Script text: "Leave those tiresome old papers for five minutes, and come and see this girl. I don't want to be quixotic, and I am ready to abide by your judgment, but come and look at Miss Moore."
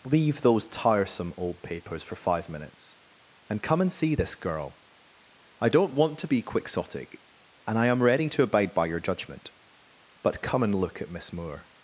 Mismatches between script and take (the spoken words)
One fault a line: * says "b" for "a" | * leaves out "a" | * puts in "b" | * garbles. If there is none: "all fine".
all fine